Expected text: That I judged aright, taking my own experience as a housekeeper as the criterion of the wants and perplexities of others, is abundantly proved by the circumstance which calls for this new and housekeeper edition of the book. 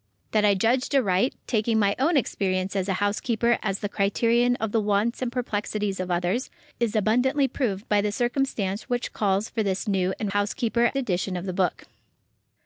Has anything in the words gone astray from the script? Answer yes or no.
no